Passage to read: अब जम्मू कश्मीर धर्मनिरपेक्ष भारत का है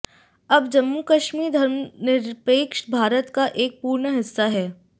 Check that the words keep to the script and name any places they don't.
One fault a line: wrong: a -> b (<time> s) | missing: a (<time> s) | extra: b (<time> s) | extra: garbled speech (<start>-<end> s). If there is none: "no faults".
extra: एक पूर्ण हिस्सा (3.6 s)